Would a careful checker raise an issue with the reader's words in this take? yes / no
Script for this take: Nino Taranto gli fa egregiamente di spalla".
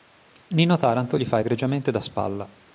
yes